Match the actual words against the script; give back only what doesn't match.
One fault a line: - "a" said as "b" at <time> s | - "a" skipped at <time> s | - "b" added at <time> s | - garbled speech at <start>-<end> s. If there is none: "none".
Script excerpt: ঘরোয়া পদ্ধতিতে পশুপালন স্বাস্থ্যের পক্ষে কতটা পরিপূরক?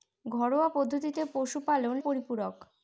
- "স্বাস্থ্যের পক্ষে কতটা" skipped at 2.0 s